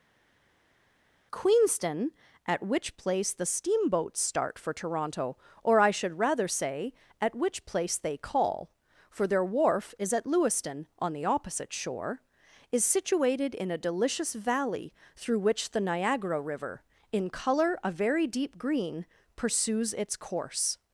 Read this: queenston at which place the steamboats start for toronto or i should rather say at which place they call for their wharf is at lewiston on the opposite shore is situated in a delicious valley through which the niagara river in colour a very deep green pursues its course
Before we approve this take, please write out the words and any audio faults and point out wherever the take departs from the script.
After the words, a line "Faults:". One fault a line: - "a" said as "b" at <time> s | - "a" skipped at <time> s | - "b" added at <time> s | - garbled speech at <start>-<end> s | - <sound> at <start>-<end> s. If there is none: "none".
queenston at which place the steamboats start for toronto or i should rather say at which place they call for their wharf is at lewiston on the opposite shore is situated in a delicious valley through which the niagara river in colour a very deep green pursues its course
Faults:
none